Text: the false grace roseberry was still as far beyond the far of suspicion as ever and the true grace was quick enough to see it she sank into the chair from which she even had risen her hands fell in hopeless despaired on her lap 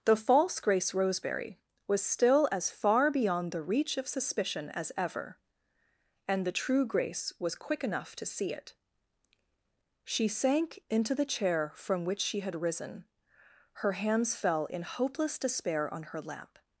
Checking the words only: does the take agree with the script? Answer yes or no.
no